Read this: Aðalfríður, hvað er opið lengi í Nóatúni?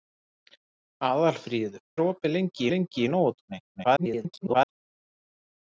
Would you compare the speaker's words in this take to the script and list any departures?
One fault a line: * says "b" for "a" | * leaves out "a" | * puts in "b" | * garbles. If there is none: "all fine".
* leaves out "hvað"
* puts in "lengi"
* garbles